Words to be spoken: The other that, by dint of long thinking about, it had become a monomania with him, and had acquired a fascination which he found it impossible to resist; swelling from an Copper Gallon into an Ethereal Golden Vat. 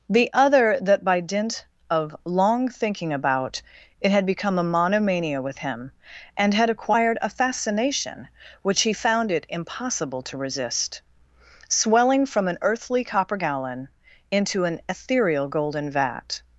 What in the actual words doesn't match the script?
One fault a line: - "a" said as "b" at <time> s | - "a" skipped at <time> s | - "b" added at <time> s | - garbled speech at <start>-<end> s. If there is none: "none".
- "Earthly" added at 12.6 s